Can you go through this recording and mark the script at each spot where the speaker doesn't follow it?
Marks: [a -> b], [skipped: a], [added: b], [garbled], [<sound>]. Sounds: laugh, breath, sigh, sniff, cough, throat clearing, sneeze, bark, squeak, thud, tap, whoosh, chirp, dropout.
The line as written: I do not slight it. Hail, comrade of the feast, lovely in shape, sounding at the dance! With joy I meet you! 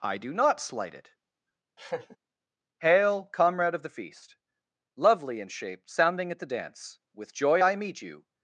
I do not slight it. [laugh] Hail, comrade of the feast, lovely in shape, sounding at the dance! With joy I meet you!